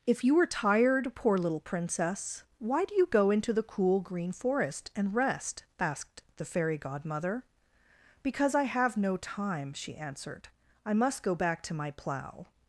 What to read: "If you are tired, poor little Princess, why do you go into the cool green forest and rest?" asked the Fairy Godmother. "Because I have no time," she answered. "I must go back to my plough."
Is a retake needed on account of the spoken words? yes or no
no